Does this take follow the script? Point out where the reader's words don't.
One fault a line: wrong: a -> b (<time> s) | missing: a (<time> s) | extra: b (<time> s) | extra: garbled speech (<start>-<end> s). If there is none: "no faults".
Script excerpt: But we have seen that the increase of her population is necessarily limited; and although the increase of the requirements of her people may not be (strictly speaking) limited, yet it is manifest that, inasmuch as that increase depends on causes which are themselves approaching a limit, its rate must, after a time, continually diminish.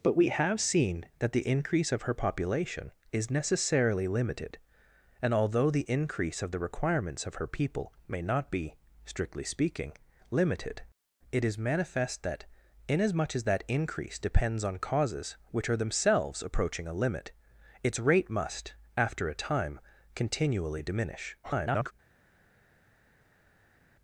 missing: yet (10.8 s)
extra: garbled speech (21.4-21.9 s)